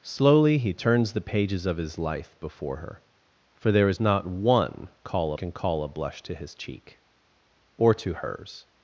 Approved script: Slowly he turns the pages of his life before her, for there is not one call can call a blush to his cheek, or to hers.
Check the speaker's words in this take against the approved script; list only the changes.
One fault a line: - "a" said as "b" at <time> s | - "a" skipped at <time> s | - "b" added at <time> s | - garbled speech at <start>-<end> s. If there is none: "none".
none